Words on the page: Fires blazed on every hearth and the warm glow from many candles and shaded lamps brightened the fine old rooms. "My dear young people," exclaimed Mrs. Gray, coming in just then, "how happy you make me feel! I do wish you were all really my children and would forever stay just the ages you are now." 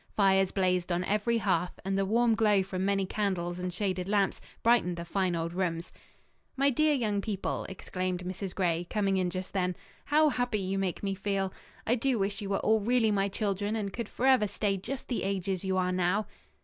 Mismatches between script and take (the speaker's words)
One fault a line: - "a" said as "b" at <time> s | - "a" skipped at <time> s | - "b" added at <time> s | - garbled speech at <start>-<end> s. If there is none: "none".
- "would" said as "could" at 13.9 s